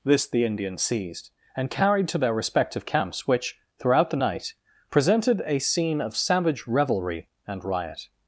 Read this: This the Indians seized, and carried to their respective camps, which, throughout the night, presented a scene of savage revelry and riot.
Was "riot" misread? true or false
false